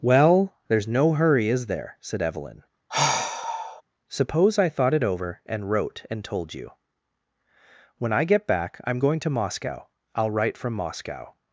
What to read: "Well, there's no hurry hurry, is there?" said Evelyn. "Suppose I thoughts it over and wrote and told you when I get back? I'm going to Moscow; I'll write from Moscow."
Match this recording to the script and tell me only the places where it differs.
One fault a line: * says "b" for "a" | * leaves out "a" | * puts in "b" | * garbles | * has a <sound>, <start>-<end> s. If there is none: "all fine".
* leaves out "hurry"
* has a sigh, 2.9-3.8 s
* says "thought" for "thoughts"